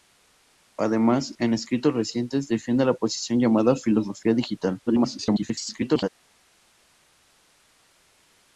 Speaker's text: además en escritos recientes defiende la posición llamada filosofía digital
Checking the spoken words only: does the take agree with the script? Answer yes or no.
no